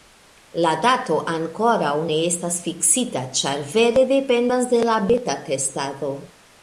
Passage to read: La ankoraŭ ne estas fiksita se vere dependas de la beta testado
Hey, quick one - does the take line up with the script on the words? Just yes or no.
no